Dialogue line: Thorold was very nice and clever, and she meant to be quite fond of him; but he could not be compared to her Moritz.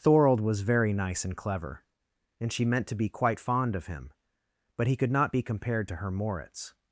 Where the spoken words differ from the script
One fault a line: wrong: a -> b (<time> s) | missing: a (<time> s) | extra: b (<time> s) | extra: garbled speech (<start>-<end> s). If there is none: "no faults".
no faults